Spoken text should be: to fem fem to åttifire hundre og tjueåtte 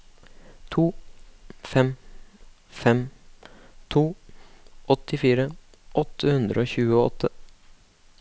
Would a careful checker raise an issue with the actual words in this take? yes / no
yes